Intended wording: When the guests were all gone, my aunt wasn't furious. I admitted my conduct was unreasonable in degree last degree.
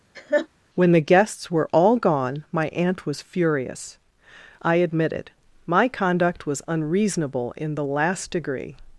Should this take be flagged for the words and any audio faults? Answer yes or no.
yes